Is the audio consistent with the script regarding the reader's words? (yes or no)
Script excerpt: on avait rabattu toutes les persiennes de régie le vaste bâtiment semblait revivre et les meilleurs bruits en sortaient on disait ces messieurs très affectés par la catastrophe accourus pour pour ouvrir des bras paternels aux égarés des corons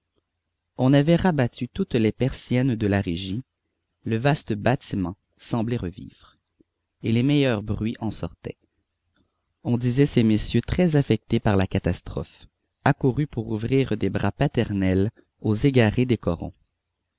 no